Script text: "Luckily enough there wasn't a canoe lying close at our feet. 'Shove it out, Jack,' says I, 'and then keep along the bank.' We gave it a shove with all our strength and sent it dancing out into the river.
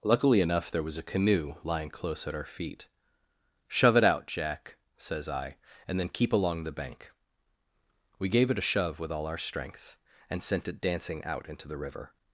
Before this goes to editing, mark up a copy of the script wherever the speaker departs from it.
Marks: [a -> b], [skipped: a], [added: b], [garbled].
"Luckily enough there [wasn't -> was] a canoe lying close at our feet. 'Shove it out, Jack,' says I, 'and then keep along the bank.' We gave it a shove with all our strength and sent it dancing out into the river.